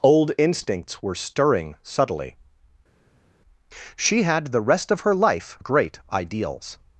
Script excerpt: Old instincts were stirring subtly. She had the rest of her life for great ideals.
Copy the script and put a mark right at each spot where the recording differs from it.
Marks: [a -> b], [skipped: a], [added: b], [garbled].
Old instincts were stirring subtly. She had the rest of her life [skipped: for] great ideals.